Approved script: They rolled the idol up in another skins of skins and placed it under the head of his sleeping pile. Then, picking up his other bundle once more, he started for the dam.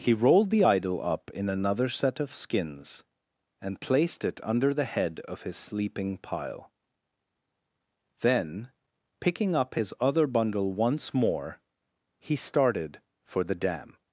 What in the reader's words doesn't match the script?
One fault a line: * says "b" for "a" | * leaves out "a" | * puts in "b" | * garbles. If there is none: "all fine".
* says "He" for "They"
* says "set" for "skins"